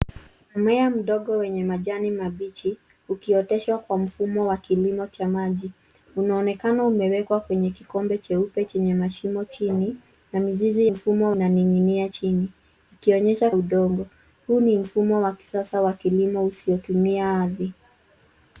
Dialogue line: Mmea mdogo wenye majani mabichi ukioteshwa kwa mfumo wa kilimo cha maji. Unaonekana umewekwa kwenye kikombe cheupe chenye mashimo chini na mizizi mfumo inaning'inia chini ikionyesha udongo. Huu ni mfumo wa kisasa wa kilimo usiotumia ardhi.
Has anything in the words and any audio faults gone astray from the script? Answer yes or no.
no